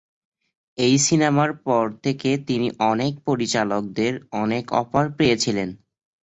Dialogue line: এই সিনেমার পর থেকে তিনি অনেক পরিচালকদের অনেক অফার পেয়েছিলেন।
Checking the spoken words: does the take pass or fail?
pass